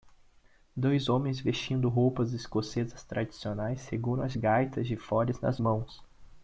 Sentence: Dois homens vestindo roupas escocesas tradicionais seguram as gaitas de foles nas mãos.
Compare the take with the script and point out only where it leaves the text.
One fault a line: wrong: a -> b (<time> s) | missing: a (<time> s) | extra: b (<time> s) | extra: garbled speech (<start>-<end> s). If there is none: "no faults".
no faults